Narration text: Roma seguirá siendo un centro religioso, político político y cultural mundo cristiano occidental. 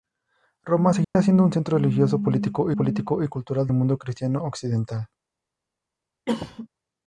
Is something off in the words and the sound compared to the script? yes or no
yes